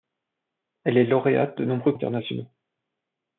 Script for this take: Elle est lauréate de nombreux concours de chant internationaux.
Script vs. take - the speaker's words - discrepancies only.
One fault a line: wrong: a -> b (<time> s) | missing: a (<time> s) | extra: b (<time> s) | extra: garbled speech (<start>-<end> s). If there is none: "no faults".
missing: concours de chant (1.9 s)